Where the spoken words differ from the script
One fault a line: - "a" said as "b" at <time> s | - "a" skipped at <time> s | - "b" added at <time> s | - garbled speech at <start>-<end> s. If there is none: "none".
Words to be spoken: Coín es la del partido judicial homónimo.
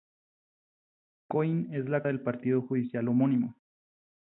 none